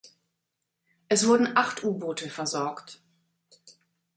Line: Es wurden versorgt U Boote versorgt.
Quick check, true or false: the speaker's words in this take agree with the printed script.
false